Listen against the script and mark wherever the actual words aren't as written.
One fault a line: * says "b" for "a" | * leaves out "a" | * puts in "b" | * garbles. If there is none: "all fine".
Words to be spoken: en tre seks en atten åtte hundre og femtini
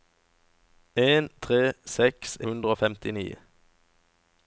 * leaves out "en atten åtte"